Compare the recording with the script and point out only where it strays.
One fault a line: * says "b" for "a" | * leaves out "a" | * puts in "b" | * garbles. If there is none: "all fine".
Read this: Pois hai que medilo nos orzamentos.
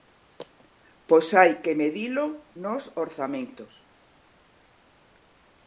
all fine